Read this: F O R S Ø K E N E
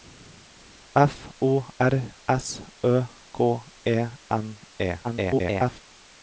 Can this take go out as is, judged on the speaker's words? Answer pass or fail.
fail